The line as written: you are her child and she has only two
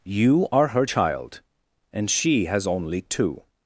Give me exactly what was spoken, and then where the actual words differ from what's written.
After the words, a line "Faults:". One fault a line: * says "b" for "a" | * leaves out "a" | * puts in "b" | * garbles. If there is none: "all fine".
you are her child and she has only two
Faults:
all fine